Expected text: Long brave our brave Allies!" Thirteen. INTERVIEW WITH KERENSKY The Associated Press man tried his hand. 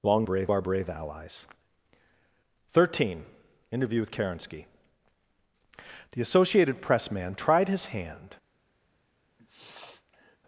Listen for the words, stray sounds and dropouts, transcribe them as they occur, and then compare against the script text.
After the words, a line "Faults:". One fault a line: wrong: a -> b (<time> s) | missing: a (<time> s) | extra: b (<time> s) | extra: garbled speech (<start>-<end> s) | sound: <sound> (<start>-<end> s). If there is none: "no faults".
Long brave our brave Allies!" Thirteen. INTERVIEW WITH KERENSKY The Associated Press man tried his hand.
Faults:
sound: sniff (9.4-10.4 s)